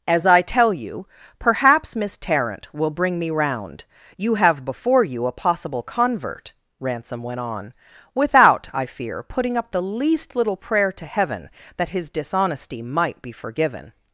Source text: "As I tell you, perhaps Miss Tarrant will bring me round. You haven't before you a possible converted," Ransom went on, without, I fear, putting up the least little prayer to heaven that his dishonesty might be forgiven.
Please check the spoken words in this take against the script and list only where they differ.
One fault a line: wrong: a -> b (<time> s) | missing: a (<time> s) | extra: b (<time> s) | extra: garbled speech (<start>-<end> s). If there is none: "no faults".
wrong: haven't -> have (4.4 s)
wrong: converted -> convert (5.8 s)